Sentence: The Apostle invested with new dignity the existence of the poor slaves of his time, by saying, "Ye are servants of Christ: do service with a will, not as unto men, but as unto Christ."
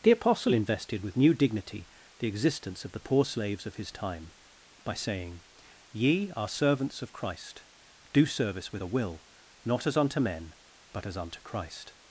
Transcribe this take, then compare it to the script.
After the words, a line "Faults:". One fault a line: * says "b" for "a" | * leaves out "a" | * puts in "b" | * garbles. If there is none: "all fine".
The Apostle invested with new dignity the existence of the poor slaves of his time, by saying, "Ye are servants of Christ: do service with a will, not as unto men, but as unto Christ."
Faults:
all fine